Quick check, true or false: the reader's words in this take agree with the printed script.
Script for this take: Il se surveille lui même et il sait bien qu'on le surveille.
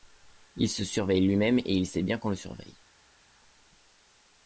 true